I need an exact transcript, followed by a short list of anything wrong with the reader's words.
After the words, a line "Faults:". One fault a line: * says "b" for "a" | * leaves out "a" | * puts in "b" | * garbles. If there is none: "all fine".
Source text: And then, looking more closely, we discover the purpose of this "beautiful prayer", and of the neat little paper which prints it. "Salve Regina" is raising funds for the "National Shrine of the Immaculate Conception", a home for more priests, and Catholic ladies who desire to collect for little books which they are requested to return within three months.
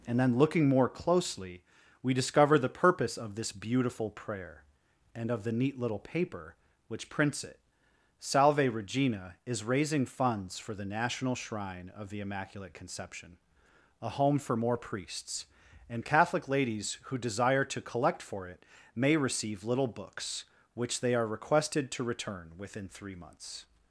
And then, looking more closely, we discover the purpose of this "beautiful prayer", and of the neat little paper which prints it. "Salve Regina" is raising funds for the "National Shrine of the Immaculate Conception", a home for more priests, and Catholic ladies who desire to collect for it may receive little books which they are requested to return within three months.
Faults:
* puts in "it may receive"